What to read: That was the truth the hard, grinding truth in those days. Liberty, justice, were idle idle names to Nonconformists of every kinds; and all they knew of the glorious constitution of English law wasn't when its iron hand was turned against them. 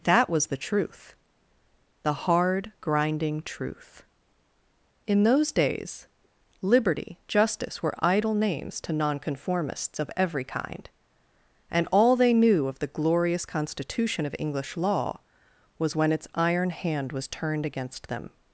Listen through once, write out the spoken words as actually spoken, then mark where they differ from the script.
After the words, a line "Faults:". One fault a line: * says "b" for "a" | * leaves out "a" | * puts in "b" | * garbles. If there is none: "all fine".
That was the truth the hard, grinding truth in those days. Liberty, justice, were idle names to Nonconformists of every kind; and all they knew of the glorious constitution of English law was when its iron hand was turned against them.
Faults:
* leaves out "idle"
* says "kind" for "kinds"
* says "was" for "wasn't"